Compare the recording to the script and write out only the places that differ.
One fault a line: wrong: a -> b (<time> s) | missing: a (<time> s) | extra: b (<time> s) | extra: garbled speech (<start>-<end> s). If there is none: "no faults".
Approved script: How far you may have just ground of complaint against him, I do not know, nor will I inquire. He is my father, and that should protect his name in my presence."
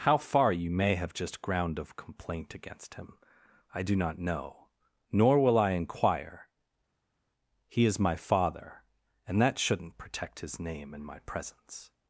wrong: should -> shouldn't (9.6 s)